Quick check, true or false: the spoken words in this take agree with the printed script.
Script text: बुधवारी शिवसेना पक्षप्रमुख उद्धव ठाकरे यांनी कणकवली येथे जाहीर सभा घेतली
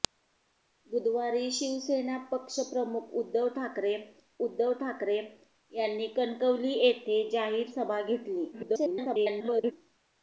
false